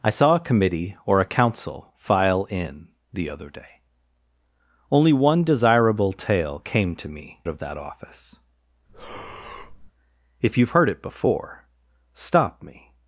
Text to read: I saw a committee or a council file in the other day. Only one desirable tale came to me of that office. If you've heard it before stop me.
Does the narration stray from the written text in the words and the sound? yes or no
yes